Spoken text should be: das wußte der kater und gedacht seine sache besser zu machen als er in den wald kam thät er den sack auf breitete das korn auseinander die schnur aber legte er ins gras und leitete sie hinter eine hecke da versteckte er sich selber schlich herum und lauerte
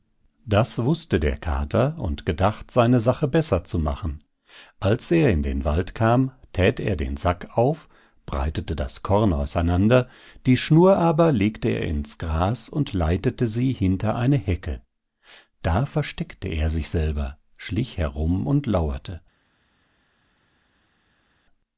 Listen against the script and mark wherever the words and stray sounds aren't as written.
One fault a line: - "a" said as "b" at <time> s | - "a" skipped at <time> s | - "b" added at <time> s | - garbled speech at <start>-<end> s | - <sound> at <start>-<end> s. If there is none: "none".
none